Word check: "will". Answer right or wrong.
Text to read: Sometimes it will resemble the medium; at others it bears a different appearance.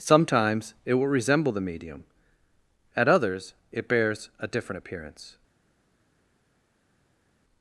right